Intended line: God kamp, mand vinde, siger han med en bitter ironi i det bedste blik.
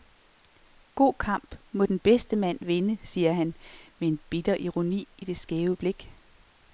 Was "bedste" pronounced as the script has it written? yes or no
no